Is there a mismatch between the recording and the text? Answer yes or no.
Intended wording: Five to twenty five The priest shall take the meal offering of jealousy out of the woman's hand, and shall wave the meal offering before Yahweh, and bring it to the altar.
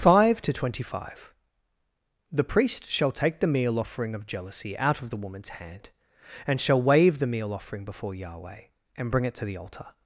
no